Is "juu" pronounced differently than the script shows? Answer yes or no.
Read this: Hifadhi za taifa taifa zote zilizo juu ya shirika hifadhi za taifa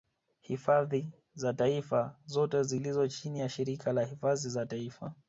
yes